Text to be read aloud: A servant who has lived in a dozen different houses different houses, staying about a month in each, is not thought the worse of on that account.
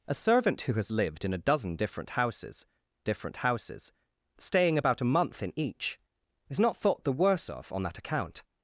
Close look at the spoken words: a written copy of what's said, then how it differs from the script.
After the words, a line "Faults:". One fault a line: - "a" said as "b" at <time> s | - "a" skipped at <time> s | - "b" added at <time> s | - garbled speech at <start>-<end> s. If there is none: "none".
A servant who has lived in a dozen different houses different houses, staying about a month in each, is not thought the worse of on that account.
Faults:
none